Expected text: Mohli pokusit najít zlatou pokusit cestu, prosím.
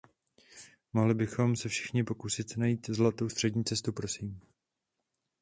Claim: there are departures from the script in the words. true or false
true